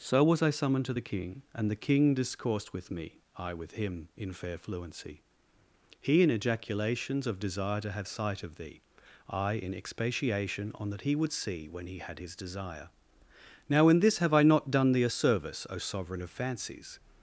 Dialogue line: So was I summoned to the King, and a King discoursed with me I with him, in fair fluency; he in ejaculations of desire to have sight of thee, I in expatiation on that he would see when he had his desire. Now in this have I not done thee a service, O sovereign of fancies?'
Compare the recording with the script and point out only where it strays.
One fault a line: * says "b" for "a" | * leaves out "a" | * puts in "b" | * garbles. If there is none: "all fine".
* says "the" for "a"